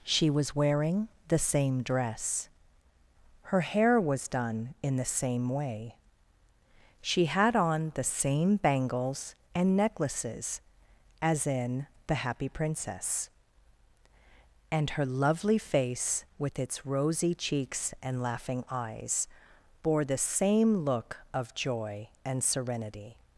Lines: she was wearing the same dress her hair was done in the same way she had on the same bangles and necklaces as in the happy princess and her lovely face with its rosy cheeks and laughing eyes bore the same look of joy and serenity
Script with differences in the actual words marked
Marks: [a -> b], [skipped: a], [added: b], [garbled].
she was wearing the same dress her hair was done in the same way she had on the same bangles and necklaces as in the happy princess and her lovely face with its rosy cheeks and laughing eyes bore the same look of joy and serenity